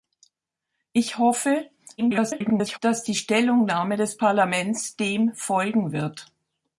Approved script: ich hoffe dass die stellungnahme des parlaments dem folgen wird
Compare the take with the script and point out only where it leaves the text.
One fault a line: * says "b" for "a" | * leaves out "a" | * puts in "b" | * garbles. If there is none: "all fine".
* garbles